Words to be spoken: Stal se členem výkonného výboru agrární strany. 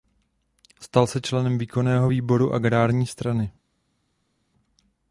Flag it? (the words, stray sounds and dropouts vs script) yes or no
no